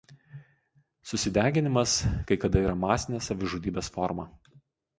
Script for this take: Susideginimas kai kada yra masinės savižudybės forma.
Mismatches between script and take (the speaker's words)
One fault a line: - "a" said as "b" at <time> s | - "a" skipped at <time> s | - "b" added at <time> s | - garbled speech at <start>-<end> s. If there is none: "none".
none